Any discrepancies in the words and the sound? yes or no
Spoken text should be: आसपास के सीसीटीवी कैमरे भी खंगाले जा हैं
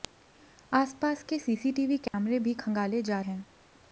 yes